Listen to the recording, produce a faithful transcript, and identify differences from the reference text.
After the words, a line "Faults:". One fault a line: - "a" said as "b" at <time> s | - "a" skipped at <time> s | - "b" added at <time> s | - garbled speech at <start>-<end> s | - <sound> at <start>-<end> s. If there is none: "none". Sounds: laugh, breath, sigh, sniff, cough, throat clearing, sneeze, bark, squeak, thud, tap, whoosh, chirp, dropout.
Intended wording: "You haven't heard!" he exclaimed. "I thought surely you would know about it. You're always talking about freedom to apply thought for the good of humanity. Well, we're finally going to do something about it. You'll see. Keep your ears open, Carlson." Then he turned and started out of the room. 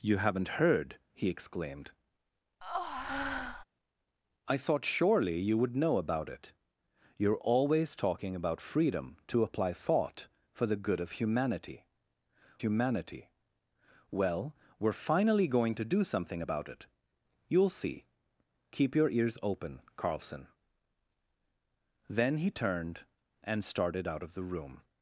"You haven't heard!" he exclaimed. "I thought surely you would know about it. You're always talking about freedom to apply thought for the good of humanity humanity. Well, we're finally going to do something about it. You'll see. Keep your ears open, Carlson." Then he turned and started out of the room.
Faults:
- breath at 2.6-3.6 s
- "humanity" added at 12.6 s